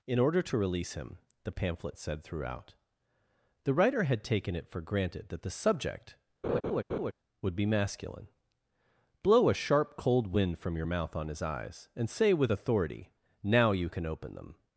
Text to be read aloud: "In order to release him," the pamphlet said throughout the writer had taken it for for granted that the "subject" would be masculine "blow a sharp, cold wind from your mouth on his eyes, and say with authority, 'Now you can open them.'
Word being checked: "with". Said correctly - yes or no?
yes